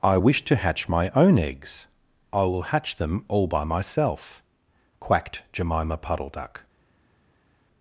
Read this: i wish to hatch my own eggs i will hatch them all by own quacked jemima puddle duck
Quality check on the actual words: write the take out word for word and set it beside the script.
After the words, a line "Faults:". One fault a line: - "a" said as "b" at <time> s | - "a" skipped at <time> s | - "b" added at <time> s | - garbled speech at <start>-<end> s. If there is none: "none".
i wish to hatch my own eggs i will hatch them all by myself quacked jemima puddle duck
Faults:
- "own" said as "myself" at 3.6 s